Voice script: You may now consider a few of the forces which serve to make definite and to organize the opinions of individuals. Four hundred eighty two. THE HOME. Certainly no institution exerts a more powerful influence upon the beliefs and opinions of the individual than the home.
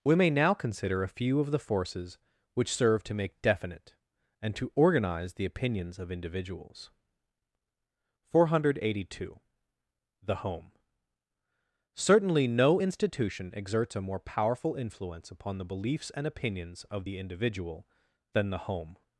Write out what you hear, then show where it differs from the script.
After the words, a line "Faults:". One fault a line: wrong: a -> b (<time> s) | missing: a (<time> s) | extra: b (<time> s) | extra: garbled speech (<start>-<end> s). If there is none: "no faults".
We may now consider a few of the forces which serve to make definite and to organize the opinions of individuals. Four hundred eighty two. THE HOME. Certainly no institution exerts a more powerful influence upon the beliefs and opinions of the individual than the home.
Faults:
wrong: You -> We (0.0 s)